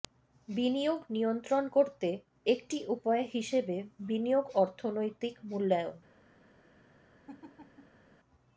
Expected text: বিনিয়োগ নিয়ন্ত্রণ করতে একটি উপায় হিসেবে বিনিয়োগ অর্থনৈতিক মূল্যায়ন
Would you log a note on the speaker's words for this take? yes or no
no